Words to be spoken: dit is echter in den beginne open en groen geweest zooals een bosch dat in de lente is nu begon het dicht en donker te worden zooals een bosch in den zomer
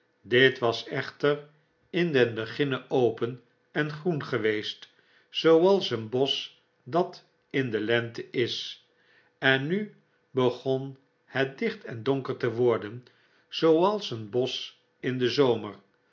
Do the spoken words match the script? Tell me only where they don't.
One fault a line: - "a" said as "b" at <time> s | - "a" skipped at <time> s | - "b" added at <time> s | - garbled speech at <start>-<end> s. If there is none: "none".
- "is" said as "was" at 0.6 s
- "en" added at 9.4 s